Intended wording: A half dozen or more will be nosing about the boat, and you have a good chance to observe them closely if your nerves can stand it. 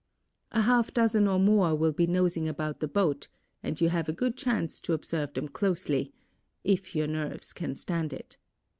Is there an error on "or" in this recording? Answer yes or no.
no